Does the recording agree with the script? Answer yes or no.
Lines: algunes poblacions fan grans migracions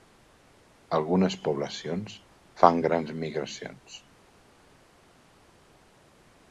yes